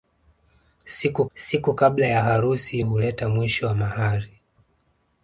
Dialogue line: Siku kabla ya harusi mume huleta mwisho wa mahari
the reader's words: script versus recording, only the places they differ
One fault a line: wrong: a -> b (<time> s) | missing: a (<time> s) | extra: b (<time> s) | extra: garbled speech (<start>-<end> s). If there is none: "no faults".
extra: siku (1.3 s)
missing: mume (2.8 s)